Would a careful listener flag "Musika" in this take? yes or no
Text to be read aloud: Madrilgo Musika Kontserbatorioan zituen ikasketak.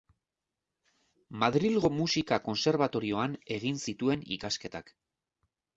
no